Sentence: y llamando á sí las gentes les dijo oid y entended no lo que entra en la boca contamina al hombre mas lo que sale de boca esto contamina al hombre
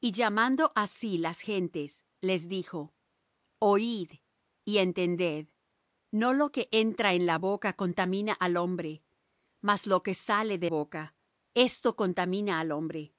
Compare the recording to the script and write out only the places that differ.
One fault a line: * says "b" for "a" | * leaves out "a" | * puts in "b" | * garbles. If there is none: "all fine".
all fine